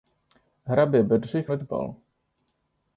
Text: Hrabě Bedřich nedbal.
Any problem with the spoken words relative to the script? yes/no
no